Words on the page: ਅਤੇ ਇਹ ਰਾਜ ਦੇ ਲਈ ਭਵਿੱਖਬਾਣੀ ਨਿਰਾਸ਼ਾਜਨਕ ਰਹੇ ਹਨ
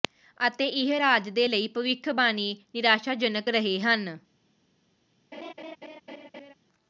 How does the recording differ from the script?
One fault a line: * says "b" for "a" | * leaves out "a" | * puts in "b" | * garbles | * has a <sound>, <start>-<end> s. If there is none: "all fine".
* has a laugh, 5.3-6.5 s